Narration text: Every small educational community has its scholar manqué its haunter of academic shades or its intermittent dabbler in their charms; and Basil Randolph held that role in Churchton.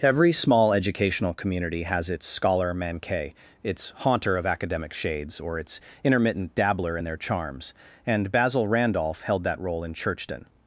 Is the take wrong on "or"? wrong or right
right